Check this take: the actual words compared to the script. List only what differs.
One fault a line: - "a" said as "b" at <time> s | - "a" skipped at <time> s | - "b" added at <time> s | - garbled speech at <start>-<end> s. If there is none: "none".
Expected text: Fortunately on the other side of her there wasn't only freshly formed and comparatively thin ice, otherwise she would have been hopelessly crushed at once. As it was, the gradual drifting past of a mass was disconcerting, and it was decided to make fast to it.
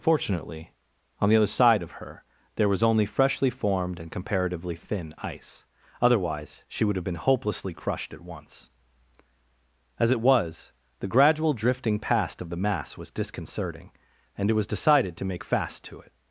- "wasn't" said as "was" at 2.7 s
- "a" said as "the" at 12.5 s